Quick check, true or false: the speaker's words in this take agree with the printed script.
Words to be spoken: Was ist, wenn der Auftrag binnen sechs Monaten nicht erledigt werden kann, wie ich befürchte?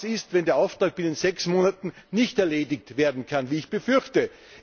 true